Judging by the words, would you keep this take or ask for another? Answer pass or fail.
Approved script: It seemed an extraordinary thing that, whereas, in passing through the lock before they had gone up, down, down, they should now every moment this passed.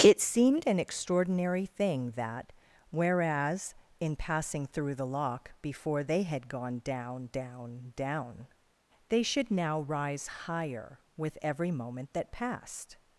fail